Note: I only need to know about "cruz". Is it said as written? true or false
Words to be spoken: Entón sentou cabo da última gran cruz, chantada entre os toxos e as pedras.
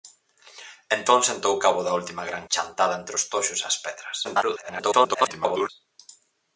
false